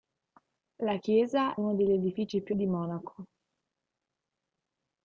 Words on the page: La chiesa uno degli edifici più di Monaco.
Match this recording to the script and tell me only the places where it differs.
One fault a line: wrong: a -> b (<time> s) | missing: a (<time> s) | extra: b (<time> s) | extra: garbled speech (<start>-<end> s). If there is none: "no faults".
no faults